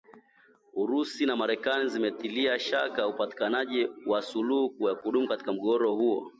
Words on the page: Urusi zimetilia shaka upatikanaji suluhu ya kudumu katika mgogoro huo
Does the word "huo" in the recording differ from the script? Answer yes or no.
no